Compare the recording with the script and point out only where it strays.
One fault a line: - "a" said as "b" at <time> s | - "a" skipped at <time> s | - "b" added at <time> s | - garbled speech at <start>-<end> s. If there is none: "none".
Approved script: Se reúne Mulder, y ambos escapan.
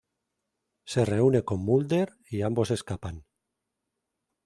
- "con" added at 1.4 s